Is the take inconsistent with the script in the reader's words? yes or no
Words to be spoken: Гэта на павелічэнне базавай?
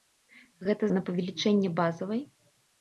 no